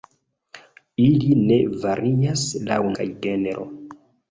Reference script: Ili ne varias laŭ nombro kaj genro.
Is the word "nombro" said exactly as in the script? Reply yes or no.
no